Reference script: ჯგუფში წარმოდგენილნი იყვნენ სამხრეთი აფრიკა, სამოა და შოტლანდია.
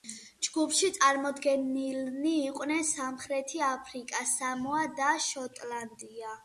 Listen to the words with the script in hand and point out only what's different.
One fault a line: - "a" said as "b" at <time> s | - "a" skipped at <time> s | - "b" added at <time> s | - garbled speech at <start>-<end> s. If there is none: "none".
none